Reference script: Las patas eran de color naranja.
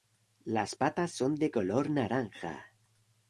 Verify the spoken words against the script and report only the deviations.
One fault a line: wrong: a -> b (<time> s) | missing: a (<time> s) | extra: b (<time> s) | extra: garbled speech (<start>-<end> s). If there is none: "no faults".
wrong: eran -> son (1.1 s)